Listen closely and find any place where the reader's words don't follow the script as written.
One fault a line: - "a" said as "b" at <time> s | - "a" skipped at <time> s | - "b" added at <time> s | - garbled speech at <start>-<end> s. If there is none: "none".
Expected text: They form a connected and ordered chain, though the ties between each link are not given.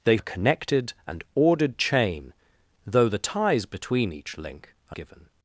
- "form" skipped at 0.2 s
- "not" skipped at 5.0 s